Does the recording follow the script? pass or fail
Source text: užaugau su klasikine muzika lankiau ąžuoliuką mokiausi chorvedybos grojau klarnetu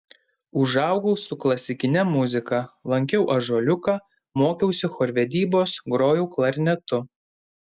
pass